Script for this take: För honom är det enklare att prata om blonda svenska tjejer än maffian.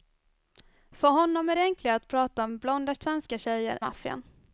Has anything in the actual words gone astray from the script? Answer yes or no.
yes